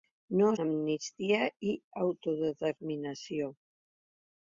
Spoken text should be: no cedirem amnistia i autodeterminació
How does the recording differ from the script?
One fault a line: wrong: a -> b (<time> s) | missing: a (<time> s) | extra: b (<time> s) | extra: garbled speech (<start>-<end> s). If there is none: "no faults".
missing: cedirem (0.5 s)